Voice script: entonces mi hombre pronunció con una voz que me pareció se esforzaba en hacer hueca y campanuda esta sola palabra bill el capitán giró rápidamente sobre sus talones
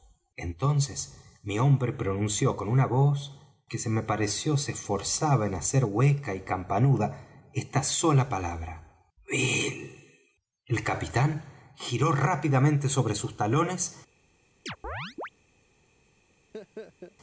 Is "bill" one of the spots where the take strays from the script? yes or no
no